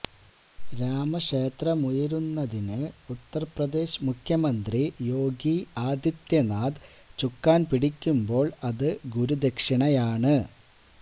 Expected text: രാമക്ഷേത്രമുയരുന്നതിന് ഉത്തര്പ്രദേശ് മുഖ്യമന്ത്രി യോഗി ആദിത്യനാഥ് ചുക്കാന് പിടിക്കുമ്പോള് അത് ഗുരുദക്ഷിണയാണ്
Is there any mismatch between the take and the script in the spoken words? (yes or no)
no